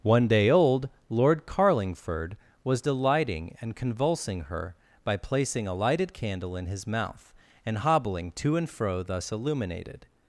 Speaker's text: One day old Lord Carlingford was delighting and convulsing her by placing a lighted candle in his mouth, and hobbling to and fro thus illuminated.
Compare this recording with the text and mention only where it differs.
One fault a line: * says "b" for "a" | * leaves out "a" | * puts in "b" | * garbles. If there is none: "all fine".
all fine